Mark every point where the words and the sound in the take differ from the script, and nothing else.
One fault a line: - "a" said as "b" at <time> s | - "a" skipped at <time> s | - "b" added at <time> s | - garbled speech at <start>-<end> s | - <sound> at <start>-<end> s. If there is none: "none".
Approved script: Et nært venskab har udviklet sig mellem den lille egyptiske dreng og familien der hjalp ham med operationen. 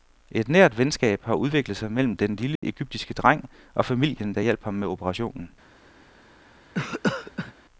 - dropout at 2.6-2.6 s
- cough at 6.7-7.5 s